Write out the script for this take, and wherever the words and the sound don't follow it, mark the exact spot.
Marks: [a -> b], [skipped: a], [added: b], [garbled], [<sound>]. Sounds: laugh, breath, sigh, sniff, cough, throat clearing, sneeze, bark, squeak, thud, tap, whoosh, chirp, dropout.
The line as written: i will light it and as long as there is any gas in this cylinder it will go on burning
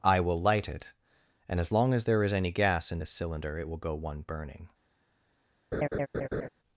i will light it and as long as there is any gas in this cylinder it will go [on -> one] burning [laugh]